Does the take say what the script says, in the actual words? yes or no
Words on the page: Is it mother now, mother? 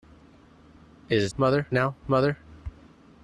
yes